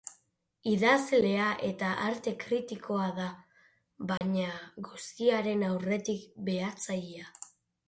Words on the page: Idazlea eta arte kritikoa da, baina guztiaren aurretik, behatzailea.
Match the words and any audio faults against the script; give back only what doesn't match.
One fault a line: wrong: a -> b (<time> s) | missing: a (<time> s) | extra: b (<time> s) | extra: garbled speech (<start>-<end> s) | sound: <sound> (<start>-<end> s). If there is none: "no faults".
sound: dropout (4.2-4.2 s)